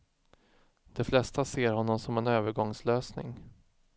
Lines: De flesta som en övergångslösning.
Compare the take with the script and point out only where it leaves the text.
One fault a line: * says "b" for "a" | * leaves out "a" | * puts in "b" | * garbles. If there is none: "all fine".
* puts in "ser honom"